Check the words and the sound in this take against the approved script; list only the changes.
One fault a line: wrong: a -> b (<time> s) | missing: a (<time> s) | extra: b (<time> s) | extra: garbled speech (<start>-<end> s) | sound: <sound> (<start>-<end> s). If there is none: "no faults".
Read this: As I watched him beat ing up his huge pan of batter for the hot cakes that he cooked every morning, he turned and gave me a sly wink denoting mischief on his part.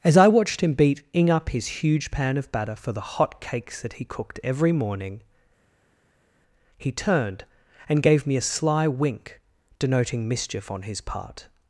no faults